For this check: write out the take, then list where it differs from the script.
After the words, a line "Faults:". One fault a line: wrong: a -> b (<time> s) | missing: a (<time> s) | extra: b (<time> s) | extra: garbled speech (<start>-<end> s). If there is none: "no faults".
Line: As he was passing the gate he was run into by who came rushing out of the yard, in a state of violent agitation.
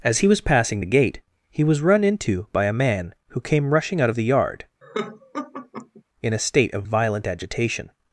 As he was passing the gate he was run into by a man who came rushing out of the yard, in a state of violent agitation.
Faults:
extra: a man (2.7 s)